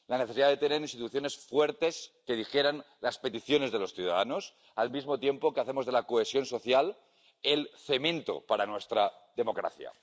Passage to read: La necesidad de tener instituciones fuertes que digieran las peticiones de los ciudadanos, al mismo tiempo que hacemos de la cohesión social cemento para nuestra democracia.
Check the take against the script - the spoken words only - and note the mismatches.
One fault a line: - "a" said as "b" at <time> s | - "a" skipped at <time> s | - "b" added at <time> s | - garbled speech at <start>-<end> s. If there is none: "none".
- "el" added at 7.4 s